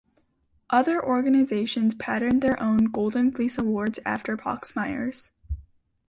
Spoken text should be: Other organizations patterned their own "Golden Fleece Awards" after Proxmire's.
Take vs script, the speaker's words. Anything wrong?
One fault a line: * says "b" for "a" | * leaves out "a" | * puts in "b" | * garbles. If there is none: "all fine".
all fine